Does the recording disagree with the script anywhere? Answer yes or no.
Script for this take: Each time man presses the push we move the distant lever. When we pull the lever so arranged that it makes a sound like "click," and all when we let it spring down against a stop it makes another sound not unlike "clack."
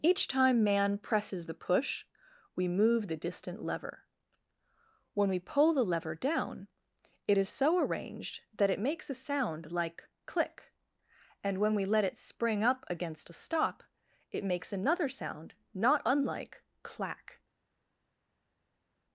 yes